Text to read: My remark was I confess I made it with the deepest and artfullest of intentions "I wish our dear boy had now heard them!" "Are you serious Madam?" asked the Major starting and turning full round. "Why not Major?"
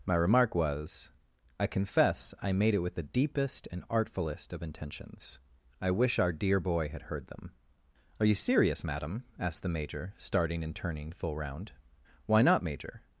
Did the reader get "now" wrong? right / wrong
wrong